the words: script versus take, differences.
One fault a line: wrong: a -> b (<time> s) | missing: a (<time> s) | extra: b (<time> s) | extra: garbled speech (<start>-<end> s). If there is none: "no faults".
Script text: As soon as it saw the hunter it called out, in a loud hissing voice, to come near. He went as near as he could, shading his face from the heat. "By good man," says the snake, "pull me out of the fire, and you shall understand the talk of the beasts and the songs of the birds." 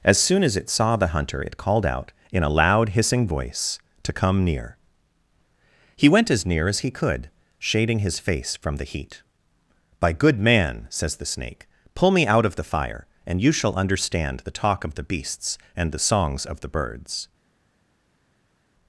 no faults